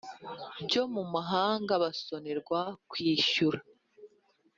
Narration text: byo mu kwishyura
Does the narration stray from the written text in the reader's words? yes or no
yes